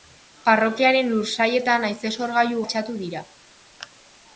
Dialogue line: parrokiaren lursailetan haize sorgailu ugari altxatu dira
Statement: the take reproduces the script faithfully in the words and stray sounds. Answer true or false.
false